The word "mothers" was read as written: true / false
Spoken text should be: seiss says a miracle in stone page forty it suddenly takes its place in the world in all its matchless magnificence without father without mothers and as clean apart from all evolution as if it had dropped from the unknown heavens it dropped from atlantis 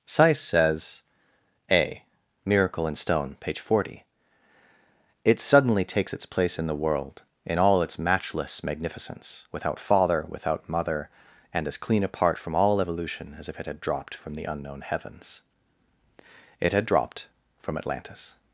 false